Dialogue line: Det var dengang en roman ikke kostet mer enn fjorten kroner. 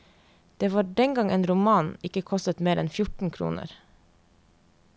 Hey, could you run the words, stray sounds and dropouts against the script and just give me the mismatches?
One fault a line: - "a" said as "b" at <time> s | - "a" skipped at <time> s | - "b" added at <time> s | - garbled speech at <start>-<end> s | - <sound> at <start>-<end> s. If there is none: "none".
none